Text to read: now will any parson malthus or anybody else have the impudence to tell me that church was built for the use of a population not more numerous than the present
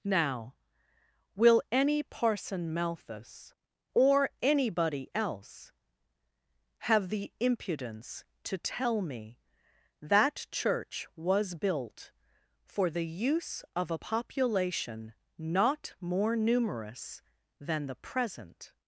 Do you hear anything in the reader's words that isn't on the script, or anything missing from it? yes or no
no